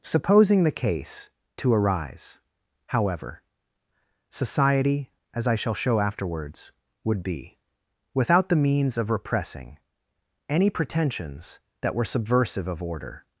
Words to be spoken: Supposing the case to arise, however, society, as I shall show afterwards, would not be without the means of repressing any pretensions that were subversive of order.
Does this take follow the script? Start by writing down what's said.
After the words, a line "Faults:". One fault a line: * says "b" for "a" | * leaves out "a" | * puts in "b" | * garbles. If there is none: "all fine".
Supposing the case to arise, however, society, as I shall show afterwards, would be without the means of repressing any pretensions that were subversive of order.
Faults:
* leaves out "not"